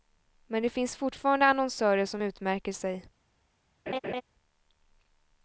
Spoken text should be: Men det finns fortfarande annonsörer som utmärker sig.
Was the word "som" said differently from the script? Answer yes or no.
no